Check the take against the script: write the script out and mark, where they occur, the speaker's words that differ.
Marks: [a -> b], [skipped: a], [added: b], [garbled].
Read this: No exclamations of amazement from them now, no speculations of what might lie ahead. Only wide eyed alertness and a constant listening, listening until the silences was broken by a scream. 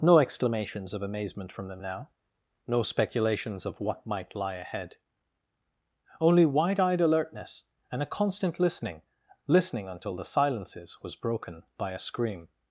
No exclamations of amazement from them now, no speculations of what might lie ahead. Only wide eyed alertness and a constant listening, listening until the silences was broken by a scream.